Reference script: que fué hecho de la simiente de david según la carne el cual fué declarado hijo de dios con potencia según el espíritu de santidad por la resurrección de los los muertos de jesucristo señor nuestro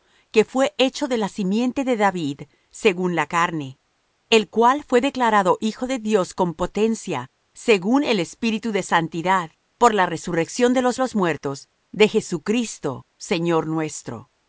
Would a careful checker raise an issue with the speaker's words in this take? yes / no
no